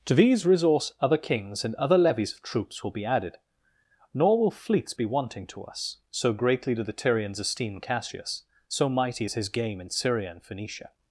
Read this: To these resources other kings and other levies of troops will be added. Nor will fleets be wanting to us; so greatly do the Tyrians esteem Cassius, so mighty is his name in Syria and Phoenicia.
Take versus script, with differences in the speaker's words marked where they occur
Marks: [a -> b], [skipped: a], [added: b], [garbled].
To these [resources -> resource] other kings and other levies of troops will be added. Nor will fleets be wanting to us; so greatly do the Tyrians esteem Cassius, so mighty is his [name -> game] in Syria and Phoenicia.